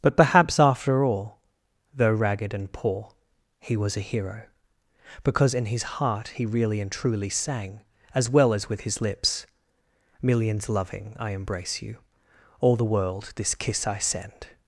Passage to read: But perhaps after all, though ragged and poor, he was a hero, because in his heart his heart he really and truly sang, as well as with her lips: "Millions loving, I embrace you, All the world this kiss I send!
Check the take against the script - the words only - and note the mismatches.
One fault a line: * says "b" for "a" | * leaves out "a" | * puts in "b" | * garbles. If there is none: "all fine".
* leaves out "his heart"
* says "his" for "her"